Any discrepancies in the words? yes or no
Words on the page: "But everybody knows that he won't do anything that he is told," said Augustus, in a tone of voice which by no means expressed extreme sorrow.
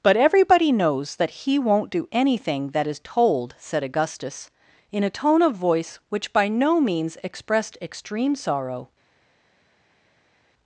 yes